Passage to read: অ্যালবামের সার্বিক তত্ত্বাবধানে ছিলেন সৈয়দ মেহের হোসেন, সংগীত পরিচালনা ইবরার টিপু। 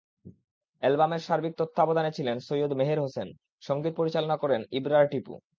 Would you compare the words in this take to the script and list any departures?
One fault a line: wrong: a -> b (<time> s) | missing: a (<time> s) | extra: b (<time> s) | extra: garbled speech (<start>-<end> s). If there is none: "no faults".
extra: করেন (4.4 s)